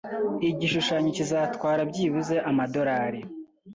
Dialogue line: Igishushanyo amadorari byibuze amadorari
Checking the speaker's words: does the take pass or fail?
fail